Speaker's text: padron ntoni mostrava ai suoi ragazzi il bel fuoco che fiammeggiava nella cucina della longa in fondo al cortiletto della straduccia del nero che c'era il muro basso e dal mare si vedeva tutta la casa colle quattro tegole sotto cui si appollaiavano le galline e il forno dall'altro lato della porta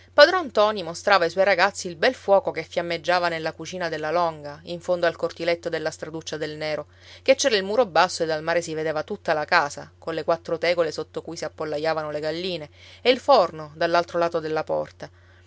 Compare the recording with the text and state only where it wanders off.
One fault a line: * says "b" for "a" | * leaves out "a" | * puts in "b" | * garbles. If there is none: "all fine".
all fine